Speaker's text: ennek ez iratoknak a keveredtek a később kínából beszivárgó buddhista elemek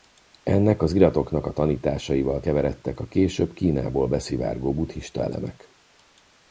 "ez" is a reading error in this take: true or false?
true